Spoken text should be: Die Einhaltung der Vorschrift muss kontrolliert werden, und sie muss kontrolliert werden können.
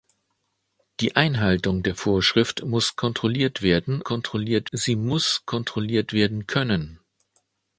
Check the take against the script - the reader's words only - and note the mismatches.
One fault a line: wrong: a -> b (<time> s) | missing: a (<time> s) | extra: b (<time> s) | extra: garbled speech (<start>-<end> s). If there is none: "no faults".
wrong: und -> kontrolliert (4.0 s)